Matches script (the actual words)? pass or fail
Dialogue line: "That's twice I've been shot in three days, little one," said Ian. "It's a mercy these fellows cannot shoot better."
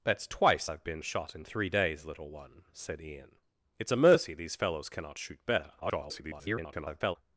fail